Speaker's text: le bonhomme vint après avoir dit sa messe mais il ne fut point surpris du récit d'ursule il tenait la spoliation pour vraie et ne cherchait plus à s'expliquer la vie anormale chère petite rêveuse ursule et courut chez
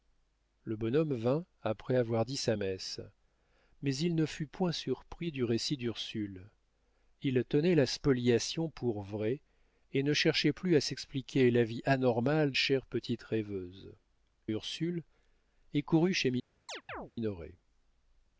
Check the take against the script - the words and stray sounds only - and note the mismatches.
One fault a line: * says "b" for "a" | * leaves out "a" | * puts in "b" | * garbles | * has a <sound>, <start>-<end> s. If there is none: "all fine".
* has a chirp, 16.7-17.1 s